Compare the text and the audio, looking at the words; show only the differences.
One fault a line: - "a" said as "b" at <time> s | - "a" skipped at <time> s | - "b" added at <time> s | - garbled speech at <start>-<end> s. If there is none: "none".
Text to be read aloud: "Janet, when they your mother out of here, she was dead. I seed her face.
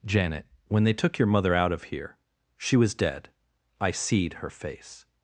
- "took" added at 0.9 s